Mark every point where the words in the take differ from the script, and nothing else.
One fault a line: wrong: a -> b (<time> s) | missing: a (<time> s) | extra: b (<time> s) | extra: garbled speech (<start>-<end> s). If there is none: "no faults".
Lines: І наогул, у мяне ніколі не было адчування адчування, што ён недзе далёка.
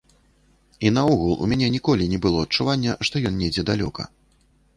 missing: адчування (3.0 s)